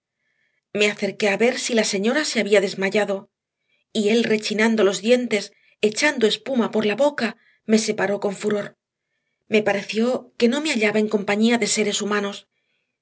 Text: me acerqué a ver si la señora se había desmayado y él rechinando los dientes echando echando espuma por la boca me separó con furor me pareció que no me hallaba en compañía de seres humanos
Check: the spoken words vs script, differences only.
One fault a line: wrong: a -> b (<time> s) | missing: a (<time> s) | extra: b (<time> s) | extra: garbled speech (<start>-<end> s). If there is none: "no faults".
missing: echando (6.3 s)